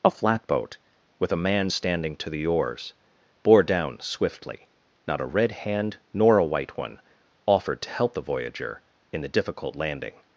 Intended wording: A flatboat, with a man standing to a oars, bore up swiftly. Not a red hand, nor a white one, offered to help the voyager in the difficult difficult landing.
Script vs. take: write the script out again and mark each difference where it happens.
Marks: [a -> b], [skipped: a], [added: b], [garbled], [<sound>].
A flatboat, with a man standing to [a -> the] oars, bore [up -> down] swiftly. Not a red hand, nor a white one, offered to help the voyager in the difficult [skipped: difficult] landing.